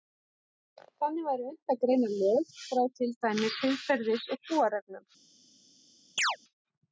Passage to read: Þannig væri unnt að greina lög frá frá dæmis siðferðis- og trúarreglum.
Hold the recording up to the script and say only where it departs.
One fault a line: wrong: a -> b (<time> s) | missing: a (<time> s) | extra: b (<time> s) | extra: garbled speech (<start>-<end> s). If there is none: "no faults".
wrong: frá -> til (3.0 s)